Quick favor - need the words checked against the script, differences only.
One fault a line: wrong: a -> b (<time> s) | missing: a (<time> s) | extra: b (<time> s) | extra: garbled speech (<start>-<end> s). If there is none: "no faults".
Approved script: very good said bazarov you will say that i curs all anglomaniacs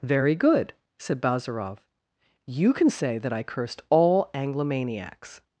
wrong: will -> can (2.7 s)
wrong: curs -> cursed (3.4 s)